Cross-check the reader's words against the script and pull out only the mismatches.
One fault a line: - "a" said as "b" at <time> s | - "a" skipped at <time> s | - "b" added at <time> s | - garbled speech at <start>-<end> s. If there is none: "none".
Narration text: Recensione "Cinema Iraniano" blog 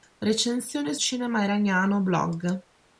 none